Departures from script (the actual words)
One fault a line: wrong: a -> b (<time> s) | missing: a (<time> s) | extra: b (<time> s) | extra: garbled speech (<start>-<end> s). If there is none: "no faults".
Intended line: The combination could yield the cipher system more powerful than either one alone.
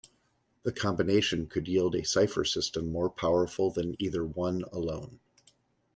wrong: the -> a (1.9 s)